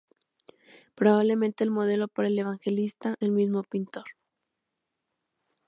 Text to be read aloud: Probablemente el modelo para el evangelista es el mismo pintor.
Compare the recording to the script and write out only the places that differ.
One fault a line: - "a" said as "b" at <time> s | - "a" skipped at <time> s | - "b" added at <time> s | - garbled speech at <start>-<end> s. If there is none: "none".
- "es" skipped at 3.2 s